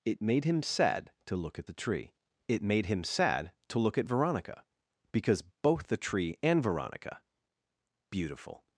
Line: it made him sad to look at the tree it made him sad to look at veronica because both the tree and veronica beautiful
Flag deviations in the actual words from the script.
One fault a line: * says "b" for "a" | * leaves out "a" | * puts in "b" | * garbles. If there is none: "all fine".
all fine